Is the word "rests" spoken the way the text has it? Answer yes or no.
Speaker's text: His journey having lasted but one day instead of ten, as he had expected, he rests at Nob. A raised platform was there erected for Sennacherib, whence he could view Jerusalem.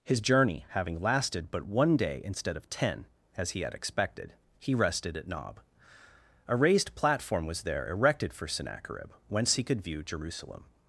no